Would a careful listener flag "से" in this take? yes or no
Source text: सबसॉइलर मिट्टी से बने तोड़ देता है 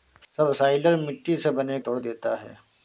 no